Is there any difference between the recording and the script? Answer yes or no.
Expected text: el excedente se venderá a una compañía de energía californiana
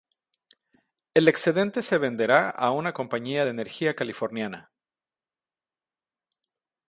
no